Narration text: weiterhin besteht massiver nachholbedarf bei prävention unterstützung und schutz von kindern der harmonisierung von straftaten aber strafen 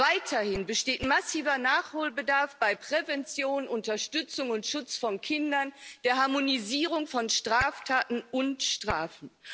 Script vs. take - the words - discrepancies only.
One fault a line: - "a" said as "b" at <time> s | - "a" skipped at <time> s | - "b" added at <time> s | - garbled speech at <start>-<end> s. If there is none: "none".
- "aber" said as "und" at 8.3 s